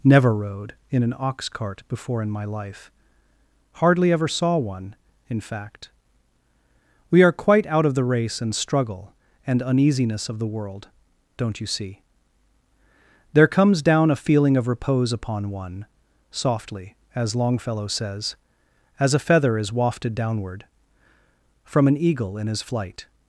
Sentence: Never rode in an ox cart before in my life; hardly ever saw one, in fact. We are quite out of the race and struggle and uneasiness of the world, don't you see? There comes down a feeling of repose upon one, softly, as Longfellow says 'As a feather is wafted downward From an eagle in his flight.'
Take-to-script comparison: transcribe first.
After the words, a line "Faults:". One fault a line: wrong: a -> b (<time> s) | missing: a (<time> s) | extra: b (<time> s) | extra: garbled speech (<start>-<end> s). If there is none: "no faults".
Never rode in an ox cart before in my life; hardly ever saw one, in fact. We are quite out of the race and struggle and uneasiness of the world, don't you see? There comes down a feeling of repose upon one, softly, as Longfellow says 'As a feather is wafted downward From an eagle in his flight.'
Faults:
no faults